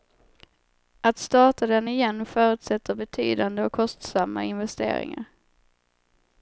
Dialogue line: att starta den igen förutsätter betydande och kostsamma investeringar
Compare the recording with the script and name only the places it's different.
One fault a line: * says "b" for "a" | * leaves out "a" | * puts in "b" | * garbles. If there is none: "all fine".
all fine